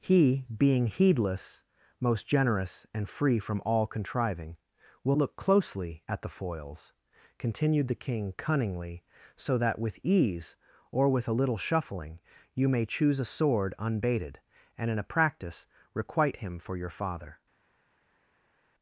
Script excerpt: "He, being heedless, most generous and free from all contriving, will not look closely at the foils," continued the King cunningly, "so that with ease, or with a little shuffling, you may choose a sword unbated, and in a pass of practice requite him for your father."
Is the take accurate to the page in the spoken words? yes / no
no